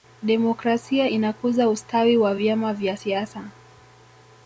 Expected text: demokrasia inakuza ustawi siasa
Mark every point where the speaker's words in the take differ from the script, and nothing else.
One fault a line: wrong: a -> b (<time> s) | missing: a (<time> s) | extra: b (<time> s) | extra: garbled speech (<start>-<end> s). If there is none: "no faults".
extra: wa vyama vya (2.2 s)